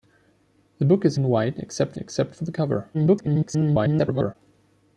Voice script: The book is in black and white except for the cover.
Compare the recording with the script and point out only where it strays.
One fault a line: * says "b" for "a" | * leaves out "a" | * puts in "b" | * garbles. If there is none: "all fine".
* leaves out "in black"
* puts in "except"
* garbles